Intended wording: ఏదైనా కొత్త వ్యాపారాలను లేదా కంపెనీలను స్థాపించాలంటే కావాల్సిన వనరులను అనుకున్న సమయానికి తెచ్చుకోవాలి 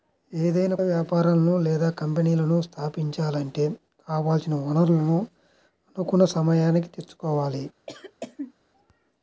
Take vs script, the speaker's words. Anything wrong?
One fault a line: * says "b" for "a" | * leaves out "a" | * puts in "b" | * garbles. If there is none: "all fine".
* leaves out "కొత్త"